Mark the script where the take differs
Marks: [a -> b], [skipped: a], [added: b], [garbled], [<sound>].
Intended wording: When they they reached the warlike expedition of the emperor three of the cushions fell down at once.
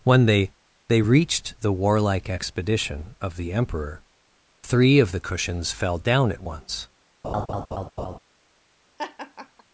When they they reached the warlike expedition of the emperor three of the cushions fell down at once. [laugh] [laugh]